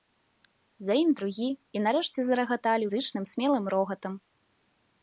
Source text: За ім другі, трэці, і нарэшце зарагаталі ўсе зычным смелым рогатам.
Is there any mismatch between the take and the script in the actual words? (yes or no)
yes